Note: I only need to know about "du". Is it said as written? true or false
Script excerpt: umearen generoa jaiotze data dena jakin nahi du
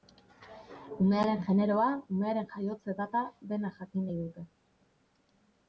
false